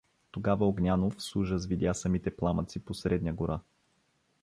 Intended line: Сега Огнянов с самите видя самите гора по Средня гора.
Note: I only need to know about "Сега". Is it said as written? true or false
false